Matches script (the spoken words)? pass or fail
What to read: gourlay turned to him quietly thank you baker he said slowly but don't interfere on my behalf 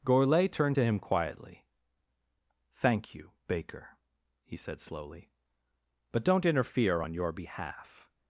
fail